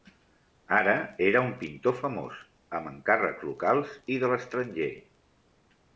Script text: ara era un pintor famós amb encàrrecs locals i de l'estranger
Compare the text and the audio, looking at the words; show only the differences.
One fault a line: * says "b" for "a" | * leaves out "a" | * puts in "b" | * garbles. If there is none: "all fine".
all fine